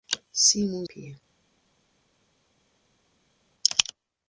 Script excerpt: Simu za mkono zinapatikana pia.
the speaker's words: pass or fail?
fail